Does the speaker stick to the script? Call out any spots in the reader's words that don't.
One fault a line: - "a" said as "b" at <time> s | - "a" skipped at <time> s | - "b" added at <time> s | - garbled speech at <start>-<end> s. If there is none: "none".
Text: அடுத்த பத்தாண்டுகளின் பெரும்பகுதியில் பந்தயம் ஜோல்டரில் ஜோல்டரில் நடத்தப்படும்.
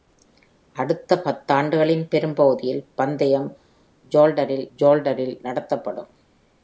none